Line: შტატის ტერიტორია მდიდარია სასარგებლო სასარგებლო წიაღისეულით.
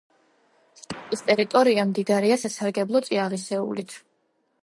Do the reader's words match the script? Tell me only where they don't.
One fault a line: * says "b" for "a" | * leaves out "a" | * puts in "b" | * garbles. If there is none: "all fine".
* leaves out "სასარგებლო"